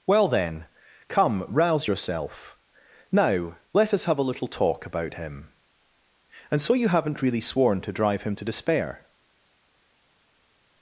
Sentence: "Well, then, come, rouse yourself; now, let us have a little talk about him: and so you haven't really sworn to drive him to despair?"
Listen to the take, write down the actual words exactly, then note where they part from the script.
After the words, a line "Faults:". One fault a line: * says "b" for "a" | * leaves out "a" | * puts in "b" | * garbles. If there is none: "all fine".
"Well, then, come, rouse yourself; now, let us have a little talk about him: and so you haven't really sworn to drive him to despair?"
Faults:
all fine